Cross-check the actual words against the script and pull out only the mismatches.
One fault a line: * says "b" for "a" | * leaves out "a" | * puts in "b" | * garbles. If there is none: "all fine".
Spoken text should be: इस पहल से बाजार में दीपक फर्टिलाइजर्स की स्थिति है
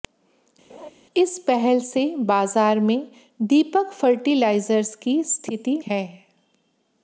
all fine